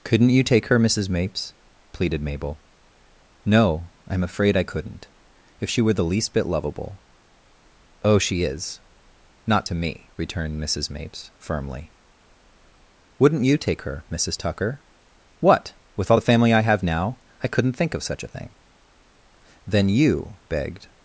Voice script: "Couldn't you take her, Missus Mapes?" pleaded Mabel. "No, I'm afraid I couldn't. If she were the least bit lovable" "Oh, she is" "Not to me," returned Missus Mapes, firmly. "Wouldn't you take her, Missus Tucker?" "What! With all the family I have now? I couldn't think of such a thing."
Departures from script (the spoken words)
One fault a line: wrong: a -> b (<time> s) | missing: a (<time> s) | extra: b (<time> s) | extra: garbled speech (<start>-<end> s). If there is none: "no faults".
extra: Then you begged (19.7 s)